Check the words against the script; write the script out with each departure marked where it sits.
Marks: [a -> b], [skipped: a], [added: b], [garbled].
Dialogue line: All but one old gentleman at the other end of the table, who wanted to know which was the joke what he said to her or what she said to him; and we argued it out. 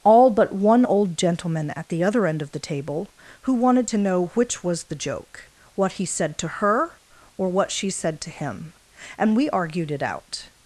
All but one old gentleman at the other end of the table, who wanted to know which was the joke what he said to her or what she said to him; and we argued it out.